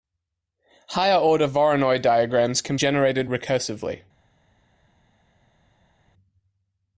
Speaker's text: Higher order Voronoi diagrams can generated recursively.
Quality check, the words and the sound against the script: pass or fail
pass